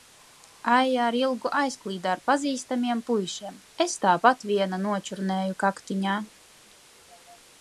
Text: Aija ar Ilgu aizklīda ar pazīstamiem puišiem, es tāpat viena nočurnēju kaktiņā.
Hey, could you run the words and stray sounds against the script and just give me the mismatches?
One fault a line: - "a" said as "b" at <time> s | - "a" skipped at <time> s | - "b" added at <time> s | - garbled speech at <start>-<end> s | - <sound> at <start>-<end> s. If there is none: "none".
none